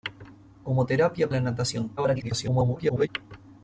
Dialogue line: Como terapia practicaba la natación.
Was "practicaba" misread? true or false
true